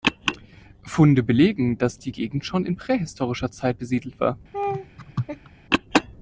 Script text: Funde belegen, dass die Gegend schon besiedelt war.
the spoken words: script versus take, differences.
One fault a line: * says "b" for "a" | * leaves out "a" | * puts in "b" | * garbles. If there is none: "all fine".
* puts in "in prähistorischer Zeit"